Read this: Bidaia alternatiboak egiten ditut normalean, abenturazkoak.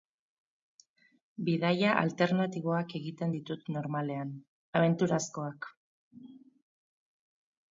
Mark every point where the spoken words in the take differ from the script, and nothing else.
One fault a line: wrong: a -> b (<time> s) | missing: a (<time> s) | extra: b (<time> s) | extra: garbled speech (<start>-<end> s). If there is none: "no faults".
no faults